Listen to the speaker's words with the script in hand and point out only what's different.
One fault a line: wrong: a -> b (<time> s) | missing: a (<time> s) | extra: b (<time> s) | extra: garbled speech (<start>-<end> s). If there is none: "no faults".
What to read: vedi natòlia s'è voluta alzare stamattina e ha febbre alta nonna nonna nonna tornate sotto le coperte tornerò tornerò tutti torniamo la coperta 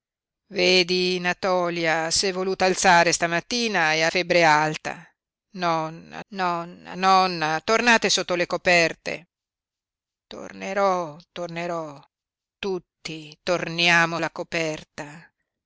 no faults